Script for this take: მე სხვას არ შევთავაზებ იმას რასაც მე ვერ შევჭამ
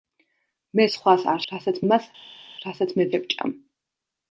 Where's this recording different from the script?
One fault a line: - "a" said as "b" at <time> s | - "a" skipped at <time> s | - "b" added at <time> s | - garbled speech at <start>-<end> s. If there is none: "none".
- "შევთავაზებ" said as "რასაც" at 1.5 s
- "ვერ" skipped at 3.1 s